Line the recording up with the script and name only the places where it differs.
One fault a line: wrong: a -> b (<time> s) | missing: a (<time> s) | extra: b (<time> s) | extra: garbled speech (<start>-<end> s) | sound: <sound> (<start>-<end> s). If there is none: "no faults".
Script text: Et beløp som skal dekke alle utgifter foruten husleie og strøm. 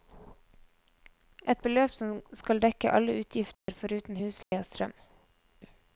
sound: dropout (3.5-3.7 s)
sound: dropout (4.4-4.5 s)